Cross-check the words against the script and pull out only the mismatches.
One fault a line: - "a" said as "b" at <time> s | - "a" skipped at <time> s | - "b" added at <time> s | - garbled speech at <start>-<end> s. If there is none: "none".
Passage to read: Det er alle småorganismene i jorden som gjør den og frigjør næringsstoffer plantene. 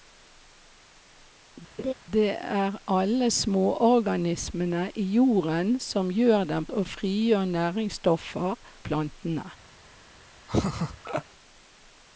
none